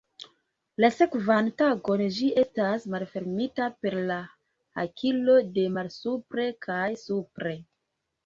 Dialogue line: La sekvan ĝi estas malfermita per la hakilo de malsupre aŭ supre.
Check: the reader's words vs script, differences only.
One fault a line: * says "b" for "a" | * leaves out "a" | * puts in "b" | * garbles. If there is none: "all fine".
* puts in "tagon"
* says "kaj" for "aŭ"